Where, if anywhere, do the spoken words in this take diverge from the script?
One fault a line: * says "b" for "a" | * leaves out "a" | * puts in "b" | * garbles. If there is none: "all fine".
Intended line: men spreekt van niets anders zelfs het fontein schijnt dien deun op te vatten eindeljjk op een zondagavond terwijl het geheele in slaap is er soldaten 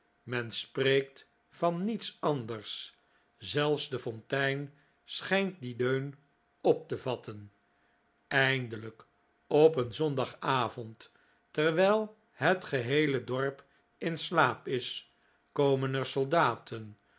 * says "de" for "het"
* puts in "dorp"
* puts in "komen"